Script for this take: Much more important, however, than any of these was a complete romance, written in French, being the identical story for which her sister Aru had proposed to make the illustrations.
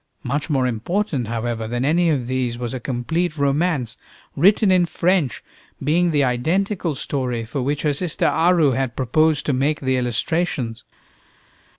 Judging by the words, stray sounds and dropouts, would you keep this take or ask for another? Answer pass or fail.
pass